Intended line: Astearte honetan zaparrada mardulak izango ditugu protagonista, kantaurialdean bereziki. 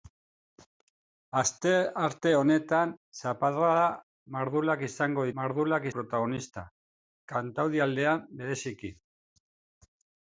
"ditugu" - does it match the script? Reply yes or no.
no